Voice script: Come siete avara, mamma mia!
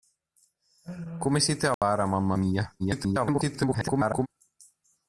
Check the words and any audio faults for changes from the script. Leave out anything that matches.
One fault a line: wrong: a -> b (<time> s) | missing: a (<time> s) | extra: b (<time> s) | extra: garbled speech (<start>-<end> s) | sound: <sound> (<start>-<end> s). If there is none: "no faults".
sound: dropout (1.7-1.8 s)
extra: garbled speech (2.8-4.3 s)